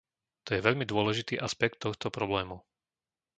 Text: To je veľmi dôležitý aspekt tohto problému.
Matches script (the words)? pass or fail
pass